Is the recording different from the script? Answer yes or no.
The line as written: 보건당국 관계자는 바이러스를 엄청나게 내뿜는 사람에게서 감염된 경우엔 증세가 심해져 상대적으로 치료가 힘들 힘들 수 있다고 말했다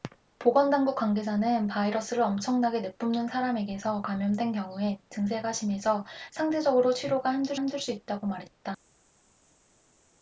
no